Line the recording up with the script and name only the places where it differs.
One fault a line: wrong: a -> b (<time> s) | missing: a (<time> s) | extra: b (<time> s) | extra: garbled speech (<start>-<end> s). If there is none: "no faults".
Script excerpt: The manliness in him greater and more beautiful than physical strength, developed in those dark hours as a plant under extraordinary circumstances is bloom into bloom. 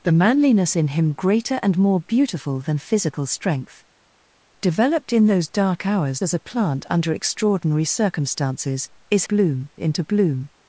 no faults